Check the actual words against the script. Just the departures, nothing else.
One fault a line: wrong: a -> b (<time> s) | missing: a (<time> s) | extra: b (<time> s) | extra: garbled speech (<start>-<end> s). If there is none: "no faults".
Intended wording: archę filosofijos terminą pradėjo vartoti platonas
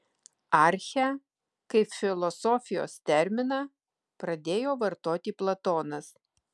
extra: kaip (1.7 s)